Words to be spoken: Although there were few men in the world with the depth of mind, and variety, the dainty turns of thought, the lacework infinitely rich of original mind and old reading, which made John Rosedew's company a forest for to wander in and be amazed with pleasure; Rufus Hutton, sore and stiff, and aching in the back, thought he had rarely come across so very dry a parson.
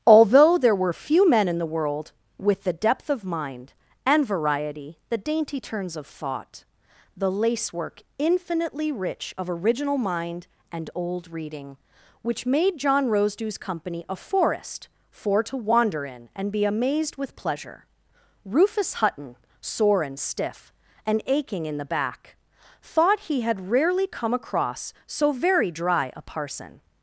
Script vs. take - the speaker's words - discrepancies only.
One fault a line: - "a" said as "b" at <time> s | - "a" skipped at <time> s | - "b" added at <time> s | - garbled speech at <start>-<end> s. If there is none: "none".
none